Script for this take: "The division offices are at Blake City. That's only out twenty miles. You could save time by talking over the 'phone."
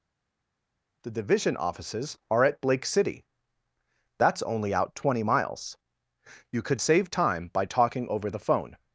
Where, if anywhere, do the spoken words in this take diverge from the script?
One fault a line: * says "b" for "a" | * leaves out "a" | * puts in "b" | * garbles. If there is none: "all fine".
all fine